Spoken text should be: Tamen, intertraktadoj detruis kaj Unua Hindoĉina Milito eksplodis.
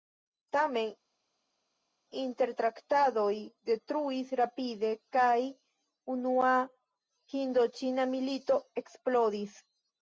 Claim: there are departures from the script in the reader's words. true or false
true